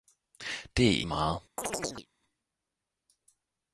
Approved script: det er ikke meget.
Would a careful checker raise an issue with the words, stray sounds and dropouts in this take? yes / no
yes